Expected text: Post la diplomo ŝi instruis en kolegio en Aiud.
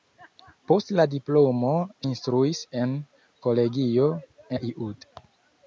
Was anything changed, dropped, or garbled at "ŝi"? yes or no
yes